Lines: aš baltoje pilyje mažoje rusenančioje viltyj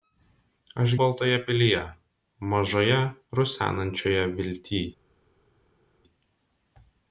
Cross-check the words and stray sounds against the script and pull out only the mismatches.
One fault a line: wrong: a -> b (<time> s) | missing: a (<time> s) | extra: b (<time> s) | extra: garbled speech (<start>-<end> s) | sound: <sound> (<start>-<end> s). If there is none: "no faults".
no faults